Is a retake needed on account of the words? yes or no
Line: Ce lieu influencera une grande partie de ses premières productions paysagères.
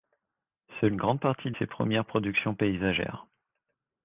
yes